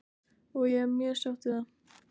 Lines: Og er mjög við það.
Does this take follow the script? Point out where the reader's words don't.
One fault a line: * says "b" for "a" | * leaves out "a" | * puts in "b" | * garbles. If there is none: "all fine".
* puts in "ég"
* puts in "sátt"